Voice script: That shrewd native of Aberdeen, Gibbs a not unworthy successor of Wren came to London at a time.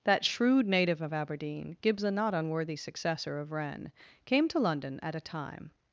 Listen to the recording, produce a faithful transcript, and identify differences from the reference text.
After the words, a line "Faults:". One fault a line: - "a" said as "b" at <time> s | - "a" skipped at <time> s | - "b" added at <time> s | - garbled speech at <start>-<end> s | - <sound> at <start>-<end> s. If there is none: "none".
That shrewd native of Aberdeen, Gibbs a not unworthy successor of Wren came to London at a time.
Faults:
none